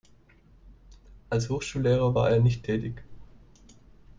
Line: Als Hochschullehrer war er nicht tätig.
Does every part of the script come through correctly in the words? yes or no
yes